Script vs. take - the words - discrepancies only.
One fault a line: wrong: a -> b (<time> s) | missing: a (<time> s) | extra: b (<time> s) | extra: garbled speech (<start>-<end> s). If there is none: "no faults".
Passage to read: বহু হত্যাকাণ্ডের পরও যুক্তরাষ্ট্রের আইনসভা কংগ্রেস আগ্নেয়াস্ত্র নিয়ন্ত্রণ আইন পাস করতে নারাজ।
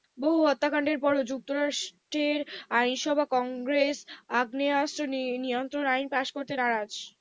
no faults